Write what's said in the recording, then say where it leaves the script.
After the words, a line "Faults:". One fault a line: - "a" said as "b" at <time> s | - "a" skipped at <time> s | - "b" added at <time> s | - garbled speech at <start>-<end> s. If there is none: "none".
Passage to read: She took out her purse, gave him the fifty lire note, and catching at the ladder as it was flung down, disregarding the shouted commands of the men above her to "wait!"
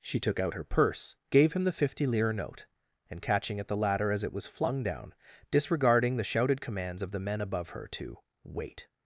She took out her purse, gave him the fifty lire note, and catching at the ladder as it was flung down, disregarding the shouted commands of the men above her to "wait!"
Faults:
none